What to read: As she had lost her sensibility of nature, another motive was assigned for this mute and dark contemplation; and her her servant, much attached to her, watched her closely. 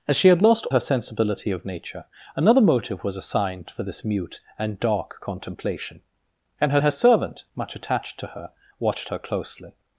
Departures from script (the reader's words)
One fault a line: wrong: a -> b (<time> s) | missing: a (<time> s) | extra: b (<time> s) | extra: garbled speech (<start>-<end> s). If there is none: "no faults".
no faults